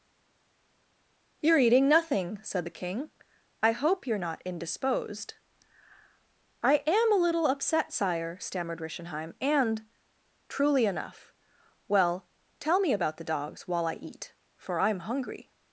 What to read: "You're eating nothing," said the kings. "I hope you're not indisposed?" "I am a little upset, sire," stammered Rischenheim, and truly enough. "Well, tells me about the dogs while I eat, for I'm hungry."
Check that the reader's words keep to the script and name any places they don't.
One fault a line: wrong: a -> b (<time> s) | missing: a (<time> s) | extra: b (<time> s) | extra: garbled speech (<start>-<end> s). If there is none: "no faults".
wrong: kings -> king (2.7 s)
wrong: tells -> tell (12.6 s)